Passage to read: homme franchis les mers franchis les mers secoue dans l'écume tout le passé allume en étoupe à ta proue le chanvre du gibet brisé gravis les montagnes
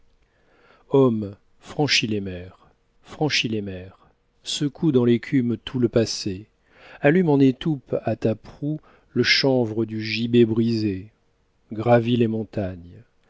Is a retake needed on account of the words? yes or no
no